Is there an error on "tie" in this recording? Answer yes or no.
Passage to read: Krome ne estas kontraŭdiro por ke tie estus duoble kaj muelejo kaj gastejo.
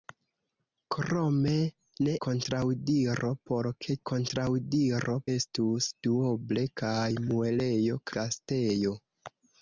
yes